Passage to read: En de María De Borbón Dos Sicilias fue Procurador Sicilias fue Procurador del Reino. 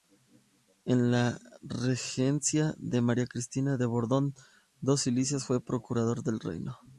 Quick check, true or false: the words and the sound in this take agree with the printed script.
false